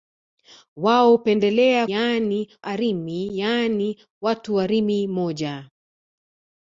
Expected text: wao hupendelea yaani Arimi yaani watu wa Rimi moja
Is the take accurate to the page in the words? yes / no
yes